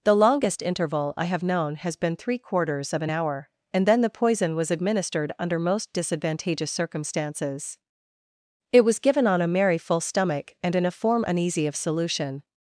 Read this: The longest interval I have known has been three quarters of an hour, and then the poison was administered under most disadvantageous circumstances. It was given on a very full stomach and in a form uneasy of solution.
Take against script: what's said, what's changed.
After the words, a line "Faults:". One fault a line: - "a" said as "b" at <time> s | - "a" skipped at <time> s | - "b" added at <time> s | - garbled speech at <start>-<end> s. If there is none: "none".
The longest interval I have known has been three quarters of an hour, and then the poison was administered under most disadvantageous circumstances. It was given on a merry full stomach and in a form uneasy of solution.
Faults:
- "very" said as "merry" at 9.5 s